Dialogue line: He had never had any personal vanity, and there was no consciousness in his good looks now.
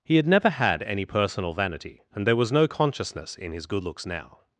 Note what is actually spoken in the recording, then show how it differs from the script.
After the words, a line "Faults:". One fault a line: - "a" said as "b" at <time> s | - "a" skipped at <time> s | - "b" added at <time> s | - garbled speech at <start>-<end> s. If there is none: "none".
He had never had any personal vanity, and there was no consciousness in his good looks now.
Faults:
none